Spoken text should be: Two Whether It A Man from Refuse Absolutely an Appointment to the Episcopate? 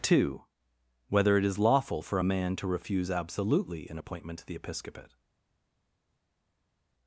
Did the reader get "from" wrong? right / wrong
wrong